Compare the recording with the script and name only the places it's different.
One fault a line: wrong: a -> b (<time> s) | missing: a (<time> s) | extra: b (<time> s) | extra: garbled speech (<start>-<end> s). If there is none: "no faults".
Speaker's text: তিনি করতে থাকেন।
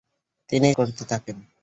no faults